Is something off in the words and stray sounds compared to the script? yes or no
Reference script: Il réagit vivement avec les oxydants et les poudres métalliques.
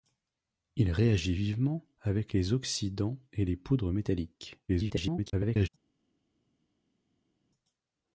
yes